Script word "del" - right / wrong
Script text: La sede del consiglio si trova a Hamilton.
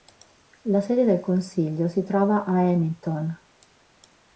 right